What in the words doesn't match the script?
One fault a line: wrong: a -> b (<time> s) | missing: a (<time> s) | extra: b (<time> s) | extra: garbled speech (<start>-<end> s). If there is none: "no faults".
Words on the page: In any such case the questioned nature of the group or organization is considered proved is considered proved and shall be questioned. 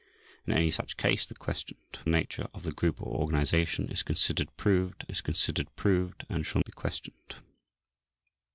no faults